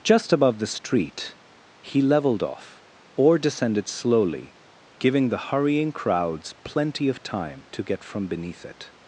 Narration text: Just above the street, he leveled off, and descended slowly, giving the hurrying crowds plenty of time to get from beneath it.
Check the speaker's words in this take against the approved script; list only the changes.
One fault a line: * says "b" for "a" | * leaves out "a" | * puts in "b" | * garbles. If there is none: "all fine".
* says "or" for "and"